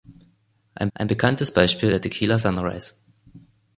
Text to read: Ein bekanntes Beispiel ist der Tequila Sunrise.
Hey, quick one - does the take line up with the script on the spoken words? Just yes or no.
no